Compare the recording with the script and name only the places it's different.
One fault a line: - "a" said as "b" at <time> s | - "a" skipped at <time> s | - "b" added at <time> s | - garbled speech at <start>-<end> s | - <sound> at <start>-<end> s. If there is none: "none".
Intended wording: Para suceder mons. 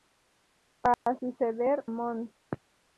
- dropout at 0.9-1.1 s